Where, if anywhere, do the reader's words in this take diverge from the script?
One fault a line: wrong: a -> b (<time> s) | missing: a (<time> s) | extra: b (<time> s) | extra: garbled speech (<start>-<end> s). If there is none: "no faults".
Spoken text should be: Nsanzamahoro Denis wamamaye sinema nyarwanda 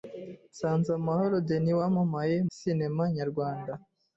no faults